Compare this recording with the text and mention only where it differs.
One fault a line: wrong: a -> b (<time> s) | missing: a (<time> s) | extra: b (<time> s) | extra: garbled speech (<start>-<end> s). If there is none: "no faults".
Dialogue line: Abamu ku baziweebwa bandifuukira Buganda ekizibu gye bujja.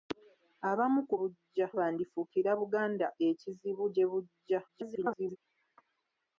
wrong: baziweebwa -> bujja (1.2 s)
extra: garbled speech (4.7-5.4 s)